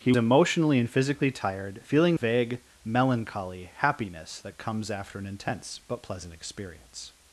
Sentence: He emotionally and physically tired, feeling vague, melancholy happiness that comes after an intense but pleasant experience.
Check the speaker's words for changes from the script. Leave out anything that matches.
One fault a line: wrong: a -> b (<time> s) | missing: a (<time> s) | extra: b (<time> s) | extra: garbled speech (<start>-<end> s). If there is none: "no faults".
no faults